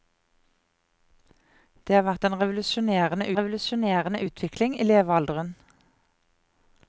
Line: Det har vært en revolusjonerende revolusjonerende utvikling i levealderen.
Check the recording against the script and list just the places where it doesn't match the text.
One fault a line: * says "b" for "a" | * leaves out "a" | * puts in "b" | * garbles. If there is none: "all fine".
all fine